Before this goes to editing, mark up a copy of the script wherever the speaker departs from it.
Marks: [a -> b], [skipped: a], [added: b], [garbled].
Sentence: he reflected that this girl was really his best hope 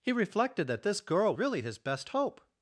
he reflected that this girl [skipped: was] really his best hope